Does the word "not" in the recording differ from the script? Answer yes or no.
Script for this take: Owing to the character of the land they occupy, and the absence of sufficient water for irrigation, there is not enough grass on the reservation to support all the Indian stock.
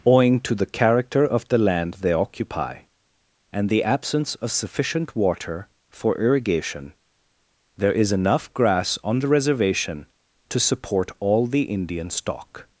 yes